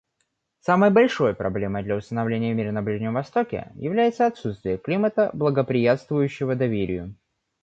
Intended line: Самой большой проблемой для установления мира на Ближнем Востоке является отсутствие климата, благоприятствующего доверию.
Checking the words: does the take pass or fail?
pass